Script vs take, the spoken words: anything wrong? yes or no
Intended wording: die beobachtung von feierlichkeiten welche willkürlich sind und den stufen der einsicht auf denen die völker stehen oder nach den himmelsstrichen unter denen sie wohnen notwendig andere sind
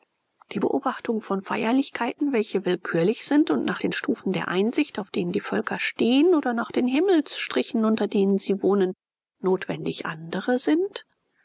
yes